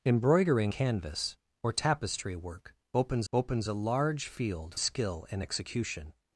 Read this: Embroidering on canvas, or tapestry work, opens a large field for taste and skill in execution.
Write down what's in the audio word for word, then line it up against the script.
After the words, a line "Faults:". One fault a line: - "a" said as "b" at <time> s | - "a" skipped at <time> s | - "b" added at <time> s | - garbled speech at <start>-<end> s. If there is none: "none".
Embroidering canvas, or tapestry work, opens opens a large field skill in execution.
Faults:
- "on" skipped at 0.7 s
- "opens" added at 3.3 s
- "for taste and" skipped at 4.7 s